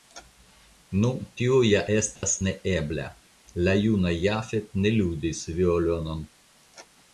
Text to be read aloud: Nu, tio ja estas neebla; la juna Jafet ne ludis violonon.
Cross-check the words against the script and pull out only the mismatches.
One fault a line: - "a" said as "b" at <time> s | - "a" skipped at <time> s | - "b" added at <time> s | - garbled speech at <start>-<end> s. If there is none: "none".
none